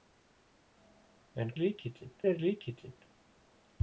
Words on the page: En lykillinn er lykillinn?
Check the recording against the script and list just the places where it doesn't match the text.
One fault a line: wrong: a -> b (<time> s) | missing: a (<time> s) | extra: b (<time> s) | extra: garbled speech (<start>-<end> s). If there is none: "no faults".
no faults